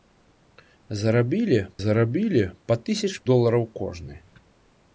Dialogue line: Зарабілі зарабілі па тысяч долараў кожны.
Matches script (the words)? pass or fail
pass